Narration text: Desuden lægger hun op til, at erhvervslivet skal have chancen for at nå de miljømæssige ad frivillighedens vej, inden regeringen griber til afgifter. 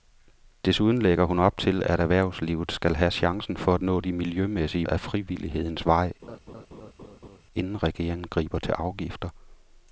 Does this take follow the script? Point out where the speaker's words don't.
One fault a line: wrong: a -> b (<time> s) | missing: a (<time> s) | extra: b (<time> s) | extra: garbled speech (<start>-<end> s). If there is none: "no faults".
no faults